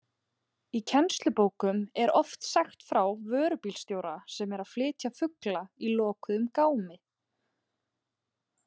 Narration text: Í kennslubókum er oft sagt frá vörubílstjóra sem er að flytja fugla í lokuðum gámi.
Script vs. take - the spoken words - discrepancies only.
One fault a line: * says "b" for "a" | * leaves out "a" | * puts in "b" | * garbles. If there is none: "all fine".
all fine